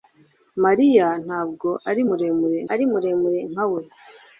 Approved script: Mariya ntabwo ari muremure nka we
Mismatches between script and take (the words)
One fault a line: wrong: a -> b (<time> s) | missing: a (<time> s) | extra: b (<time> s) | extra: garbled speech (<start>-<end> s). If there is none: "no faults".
extra: ari muremure (2.7 s)